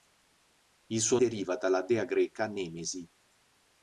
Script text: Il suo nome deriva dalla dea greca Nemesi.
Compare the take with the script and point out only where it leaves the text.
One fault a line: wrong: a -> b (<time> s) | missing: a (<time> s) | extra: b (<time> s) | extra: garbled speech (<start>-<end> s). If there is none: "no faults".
missing: nome (1.2 s)